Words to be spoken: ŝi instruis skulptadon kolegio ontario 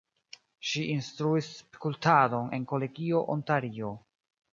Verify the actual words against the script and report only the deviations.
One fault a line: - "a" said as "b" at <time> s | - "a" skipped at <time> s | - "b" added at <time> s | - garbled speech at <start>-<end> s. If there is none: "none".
- "en" added at 2.6 s